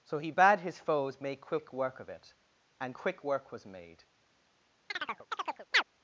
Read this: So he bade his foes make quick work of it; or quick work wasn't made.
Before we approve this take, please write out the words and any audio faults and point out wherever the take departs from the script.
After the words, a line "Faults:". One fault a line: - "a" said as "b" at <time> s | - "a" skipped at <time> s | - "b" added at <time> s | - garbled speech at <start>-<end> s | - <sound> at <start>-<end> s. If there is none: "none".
So he bade his foes make quick work of it; and quick work was made.
Faults:
- "or" said as "and" at 2.8 s
- "wasn't" said as "was" at 3.5 s
- chirp at 4.9-5.8 s